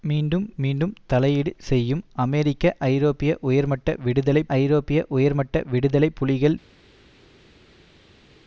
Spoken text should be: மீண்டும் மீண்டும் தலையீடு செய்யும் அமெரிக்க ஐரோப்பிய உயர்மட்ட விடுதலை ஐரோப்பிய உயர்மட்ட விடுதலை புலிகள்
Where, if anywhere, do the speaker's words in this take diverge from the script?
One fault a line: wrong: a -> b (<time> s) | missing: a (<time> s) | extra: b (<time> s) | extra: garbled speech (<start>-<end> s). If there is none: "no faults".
no faults